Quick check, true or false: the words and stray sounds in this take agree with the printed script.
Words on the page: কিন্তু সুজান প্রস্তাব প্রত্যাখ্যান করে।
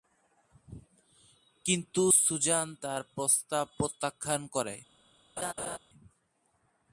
false